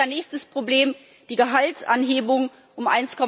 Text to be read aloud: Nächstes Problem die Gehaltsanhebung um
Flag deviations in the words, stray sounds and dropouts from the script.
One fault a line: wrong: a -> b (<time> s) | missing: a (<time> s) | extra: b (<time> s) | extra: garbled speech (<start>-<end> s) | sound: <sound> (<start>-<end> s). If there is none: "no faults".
no faults